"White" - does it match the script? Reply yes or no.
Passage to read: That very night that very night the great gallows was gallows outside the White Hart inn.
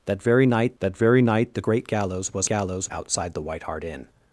yes